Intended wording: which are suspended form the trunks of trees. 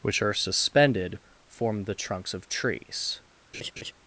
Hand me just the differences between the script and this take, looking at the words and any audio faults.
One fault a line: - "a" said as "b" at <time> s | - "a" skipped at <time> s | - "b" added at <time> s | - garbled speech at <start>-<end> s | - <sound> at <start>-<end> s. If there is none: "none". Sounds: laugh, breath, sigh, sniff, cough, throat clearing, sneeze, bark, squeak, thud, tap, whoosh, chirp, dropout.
- laugh at 3.5-3.9 s